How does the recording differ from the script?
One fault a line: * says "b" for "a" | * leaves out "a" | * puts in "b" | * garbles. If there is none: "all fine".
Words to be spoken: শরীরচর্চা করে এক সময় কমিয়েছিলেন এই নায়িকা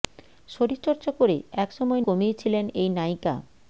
all fine